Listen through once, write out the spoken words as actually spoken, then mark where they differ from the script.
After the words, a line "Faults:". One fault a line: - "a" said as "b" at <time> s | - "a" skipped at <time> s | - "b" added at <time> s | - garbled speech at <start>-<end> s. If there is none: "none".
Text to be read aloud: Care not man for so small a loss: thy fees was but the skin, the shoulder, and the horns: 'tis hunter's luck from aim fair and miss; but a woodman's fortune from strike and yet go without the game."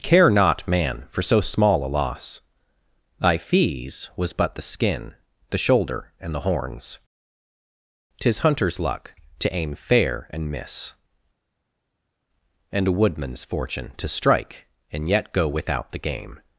Care not man for so small a loss: thy fees was but the skin, the shoulder, and the horns: 'tis hunter's luck to aim fair and miss; and a woodman's fortune to strike and yet go without the game."
Faults:
- "from" said as "to" at 9.4 s
- "but" said as "and" at 12.7 s
- "from" said as "to" at 14.0 s